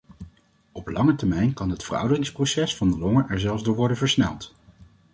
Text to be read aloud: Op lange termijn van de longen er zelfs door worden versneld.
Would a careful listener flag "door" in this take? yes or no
no